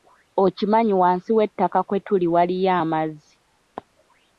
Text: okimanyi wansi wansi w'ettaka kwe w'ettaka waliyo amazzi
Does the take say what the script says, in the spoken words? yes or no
no